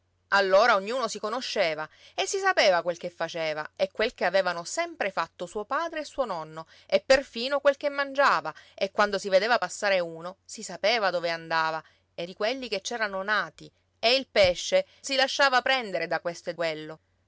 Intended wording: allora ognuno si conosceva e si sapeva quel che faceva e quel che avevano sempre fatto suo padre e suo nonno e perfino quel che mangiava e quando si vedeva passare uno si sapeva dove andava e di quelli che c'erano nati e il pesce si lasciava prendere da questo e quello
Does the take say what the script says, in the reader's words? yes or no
yes